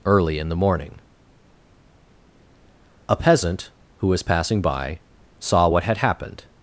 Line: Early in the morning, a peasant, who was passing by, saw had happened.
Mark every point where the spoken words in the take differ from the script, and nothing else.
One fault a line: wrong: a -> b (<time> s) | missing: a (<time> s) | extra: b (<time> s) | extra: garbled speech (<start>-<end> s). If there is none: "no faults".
extra: what (5.7 s)